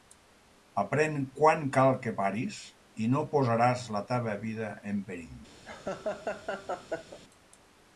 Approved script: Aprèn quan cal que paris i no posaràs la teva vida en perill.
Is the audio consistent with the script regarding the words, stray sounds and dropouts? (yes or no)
no